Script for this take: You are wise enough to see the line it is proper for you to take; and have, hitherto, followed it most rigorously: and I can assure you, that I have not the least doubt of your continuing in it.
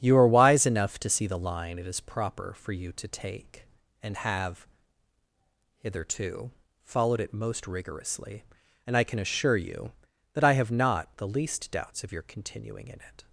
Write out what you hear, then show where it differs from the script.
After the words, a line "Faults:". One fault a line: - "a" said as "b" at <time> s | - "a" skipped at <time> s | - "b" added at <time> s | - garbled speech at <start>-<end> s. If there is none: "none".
You are wise enough to see the line it is proper for you to take; and have, hitherto, followed it most rigorously: and I can assure you, that I have not the least doubts of your continuing in it.
Faults:
- "doubt" said as "doubts" at 11.7 s